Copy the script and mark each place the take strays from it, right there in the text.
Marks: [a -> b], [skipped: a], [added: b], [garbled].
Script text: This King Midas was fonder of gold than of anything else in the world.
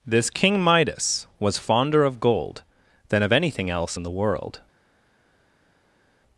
This King Midas was fonder of gold than of anything else in the world.